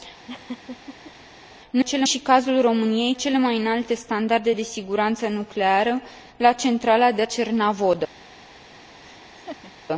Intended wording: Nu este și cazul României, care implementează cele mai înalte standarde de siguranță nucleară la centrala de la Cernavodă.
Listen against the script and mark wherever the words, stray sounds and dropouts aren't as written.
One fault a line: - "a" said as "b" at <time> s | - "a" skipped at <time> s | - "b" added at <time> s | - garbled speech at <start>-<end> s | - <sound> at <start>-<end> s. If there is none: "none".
- laugh at 0.3-1.1 s
- "este" said as "cele" at 1.8 s
- "care implementează" skipped at 3.1 s
- "la" skipped at 7.2 s
- laugh at 9.0-9.7 s